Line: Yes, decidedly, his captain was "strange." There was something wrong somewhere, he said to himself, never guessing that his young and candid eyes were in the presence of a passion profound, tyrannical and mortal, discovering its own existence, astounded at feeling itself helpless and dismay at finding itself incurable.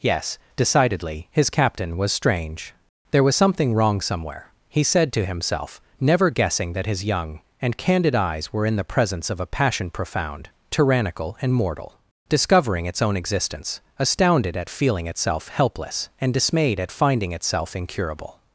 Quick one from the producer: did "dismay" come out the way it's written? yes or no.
no